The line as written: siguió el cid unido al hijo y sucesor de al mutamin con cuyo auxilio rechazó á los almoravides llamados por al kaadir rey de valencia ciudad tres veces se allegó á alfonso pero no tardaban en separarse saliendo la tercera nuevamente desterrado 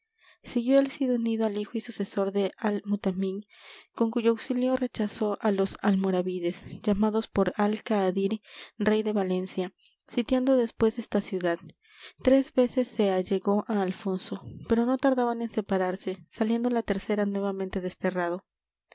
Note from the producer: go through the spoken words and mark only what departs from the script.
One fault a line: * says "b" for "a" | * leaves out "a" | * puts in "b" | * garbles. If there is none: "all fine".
* puts in "sitiando después esta"